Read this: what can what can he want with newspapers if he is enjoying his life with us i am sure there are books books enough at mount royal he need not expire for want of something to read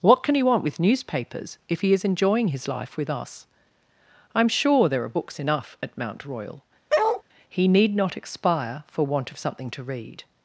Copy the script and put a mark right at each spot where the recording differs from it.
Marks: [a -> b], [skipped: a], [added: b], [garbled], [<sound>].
what can [skipped: what can] he want with newspapers if he is enjoying his life with us i am sure there are books [skipped: books] enough at mount royal [bark] he need not expire for want of something to read